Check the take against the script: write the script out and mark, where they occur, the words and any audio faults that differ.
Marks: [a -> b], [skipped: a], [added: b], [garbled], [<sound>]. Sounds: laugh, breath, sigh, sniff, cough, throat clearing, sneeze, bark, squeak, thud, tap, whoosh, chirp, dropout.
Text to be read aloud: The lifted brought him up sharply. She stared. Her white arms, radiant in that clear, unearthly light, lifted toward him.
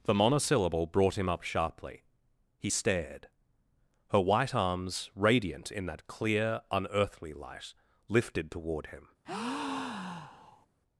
The [lifted -> monosyllable] brought him up sharply. [She -> He] stared. Her white arms, radiant in that clear, unearthly light, lifted toward him. [breath]